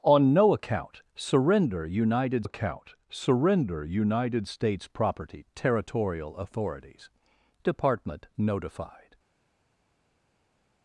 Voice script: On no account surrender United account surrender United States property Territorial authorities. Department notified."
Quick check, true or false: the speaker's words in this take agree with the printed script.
true